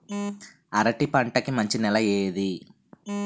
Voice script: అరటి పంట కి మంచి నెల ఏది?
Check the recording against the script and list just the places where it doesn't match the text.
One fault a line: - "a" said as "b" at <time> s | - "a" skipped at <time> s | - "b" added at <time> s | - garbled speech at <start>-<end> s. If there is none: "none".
none